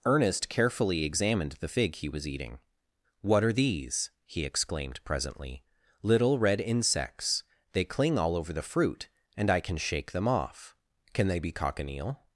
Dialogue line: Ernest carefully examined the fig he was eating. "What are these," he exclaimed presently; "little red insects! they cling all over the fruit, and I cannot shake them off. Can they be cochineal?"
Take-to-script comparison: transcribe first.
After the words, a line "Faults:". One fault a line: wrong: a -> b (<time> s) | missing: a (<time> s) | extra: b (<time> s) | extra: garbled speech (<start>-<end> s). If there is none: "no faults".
Ernest carefully examined the fig he was eating. "What are these," he exclaimed presently; "little red insects! they cling all over the fruit, and I can shake them off. Can they be cochineal?"
Faults:
wrong: cannot -> can (9.6 s)